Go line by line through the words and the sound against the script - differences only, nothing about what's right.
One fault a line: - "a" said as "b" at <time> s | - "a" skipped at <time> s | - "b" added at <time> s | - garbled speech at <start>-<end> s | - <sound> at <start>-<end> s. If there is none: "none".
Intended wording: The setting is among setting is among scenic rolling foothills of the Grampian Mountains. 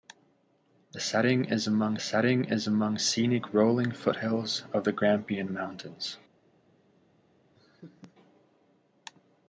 - laugh at 7.5-8.1 s